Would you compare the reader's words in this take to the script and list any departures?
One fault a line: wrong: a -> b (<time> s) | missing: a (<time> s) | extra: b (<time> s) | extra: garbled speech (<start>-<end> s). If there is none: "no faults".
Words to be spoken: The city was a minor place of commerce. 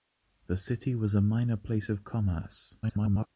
extra: garbled speech (2.8-3.3 s)